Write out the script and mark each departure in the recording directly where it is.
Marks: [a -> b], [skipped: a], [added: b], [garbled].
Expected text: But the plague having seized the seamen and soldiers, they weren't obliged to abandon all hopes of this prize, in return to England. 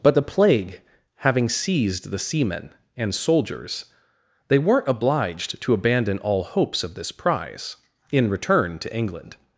But the plague having seized the seamen and soldiers, they weren't obliged to abandon all hopes of this prize, in return to England.